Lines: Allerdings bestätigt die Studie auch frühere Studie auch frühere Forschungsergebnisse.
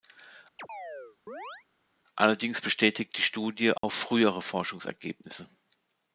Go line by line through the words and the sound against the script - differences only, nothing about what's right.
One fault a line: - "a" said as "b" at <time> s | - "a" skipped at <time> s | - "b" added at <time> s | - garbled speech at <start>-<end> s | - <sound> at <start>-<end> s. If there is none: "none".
- chirp at 0.6-1.7 s
- dropout at 3.8-3.8 s
- "Studie auch frühere" skipped at 4.4 s